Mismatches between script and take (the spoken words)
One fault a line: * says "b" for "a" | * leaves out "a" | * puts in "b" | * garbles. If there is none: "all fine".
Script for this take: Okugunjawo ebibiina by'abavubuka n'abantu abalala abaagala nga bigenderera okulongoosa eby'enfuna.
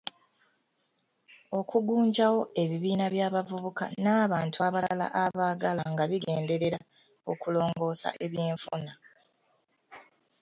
all fine